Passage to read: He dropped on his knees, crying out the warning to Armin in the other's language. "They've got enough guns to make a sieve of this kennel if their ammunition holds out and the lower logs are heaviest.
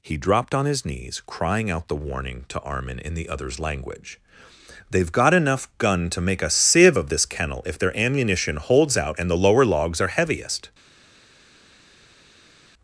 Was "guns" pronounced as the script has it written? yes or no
no